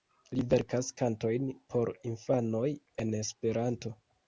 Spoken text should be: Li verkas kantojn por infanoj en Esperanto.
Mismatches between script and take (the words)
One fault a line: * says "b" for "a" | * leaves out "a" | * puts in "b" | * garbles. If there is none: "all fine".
all fine